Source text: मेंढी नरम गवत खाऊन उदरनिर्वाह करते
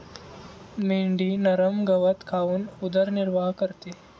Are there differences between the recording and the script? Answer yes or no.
no